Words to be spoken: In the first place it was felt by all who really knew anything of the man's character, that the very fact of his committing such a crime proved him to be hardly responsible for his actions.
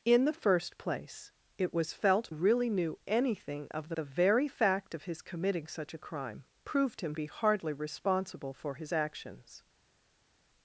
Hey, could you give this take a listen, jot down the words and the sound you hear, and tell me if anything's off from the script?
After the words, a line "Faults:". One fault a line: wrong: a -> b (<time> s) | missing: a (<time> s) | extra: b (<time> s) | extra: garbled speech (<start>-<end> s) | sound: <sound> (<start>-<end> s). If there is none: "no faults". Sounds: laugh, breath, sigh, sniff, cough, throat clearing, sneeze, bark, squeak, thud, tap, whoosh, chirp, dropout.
In the first place it was felt really knew anything of the the very fact of his committing such a crime proved him be hardly responsible for his actions.
Faults:
missing: by all who (2.3 s)
missing: man's character that (4.0 s)
missing: to (7.1 s)